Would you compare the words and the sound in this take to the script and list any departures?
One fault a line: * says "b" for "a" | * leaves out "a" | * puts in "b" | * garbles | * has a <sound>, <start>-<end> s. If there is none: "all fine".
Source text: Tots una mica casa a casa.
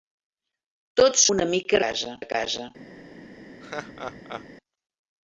* has a laugh, 3.6-4.5 s